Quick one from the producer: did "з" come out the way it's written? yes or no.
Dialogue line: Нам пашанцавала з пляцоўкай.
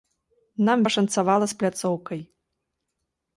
yes